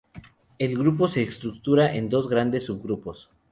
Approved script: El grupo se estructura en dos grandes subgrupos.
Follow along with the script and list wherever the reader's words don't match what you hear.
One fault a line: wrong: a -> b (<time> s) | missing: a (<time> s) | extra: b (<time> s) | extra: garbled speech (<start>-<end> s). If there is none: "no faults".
no faults